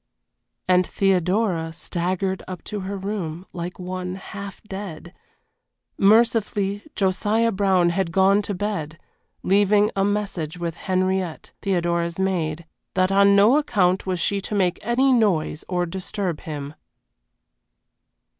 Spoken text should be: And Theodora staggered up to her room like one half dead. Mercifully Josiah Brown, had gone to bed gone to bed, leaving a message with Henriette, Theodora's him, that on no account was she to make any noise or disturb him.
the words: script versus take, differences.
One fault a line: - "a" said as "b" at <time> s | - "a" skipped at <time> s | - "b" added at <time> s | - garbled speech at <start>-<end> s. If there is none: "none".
- "gone to bed" skipped at 9.0 s
- "him" said as "maid" at 12.2 s